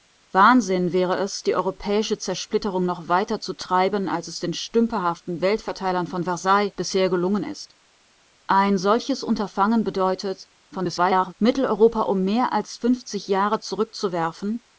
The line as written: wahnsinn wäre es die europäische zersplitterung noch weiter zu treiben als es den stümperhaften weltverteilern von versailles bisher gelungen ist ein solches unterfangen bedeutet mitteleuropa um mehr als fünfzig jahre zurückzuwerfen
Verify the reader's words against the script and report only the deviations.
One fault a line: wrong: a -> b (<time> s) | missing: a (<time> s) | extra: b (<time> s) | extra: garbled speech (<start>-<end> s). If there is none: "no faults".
extra: garbled speech (10.7-11.3 s)